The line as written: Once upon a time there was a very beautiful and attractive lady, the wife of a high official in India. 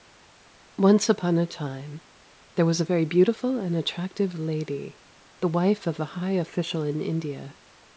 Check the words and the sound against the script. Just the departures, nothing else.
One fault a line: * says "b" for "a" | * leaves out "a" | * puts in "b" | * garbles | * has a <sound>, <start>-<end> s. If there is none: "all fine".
all fine